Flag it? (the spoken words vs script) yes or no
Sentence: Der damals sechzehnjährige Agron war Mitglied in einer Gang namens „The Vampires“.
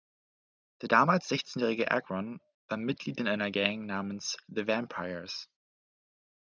no